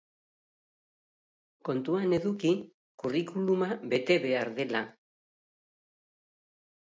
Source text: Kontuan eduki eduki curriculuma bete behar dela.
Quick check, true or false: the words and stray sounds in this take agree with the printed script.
false